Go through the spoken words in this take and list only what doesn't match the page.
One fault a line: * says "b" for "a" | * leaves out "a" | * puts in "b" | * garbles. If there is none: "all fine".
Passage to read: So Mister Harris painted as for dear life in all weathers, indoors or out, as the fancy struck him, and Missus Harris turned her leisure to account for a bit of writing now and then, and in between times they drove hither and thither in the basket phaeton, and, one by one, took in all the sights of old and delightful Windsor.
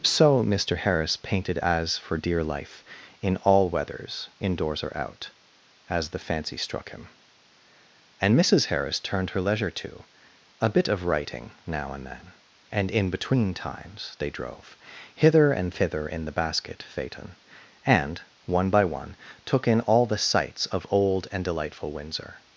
* leaves out "account for"